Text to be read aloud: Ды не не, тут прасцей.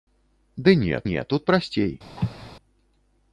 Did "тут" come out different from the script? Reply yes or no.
no